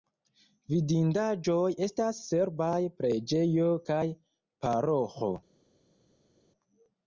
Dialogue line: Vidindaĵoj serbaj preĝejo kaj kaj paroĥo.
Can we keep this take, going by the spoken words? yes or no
no